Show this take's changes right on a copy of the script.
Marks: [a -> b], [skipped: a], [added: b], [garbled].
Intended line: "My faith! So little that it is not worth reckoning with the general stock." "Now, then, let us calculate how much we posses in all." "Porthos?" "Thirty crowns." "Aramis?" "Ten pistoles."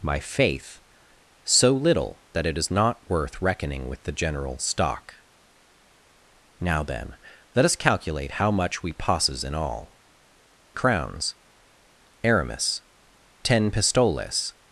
"My faith! So little that it is not worth reckoning with the general stock." "Now, then, let us calculate how much we posses in all." [skipped: "Porthos?" "Thirty] crowns." "Aramis?" "Ten pistoles."